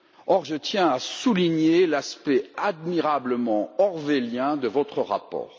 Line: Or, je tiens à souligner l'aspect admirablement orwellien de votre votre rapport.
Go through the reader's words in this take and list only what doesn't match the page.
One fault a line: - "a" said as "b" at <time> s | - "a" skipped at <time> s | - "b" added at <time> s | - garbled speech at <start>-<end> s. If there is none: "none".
- "votre" skipped at 5.0 s